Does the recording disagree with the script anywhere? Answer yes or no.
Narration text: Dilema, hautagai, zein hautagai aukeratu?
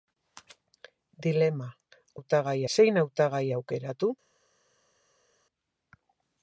no